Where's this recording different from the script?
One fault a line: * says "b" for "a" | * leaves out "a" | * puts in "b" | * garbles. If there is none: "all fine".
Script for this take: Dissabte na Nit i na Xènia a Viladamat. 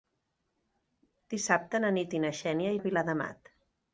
all fine